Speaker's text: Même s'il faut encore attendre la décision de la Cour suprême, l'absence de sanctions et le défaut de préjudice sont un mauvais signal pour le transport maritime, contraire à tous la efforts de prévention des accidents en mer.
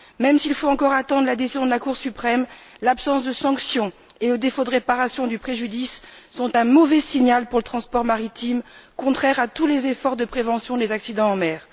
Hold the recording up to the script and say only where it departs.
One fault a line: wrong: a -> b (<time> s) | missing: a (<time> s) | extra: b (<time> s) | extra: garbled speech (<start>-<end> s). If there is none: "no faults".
extra: réparation du (4.7 s)
wrong: la -> les (9.7 s)